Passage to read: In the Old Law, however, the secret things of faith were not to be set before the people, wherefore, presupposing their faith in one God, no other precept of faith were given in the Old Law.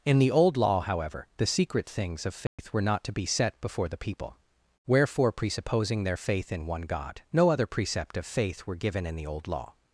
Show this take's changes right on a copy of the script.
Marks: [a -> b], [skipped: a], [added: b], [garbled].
In the Old Law, however, the secret things of faith were not to be set before the people, wherefore, presupposing their faith in one God, no other precept of faith were given in the Old Law.